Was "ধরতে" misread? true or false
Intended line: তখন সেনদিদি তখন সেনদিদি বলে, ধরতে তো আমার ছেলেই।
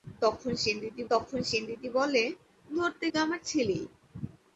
false